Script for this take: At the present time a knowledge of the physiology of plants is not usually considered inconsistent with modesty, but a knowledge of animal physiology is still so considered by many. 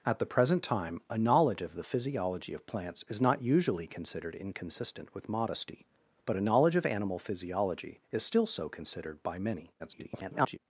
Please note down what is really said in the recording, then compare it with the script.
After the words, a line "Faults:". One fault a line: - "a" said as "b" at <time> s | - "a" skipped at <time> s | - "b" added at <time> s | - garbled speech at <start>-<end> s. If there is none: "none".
At the present time a knowledge of the physiology of plants is not usually considered inconsistent with modesty, but a knowledge of animal physiology is still so considered by many. [garbled]
Faults:
- garbled speech at 9.8-10.6 s